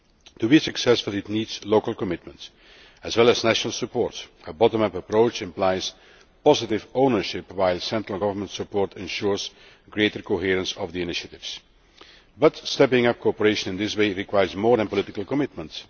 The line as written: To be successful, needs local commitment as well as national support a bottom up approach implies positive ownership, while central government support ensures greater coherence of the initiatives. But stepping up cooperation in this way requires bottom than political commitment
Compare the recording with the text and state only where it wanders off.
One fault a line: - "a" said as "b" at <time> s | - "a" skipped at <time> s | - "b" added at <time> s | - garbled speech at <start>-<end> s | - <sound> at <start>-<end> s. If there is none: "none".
- "it" added at 1.1 s
- "bottom" said as "more" at 14.5 s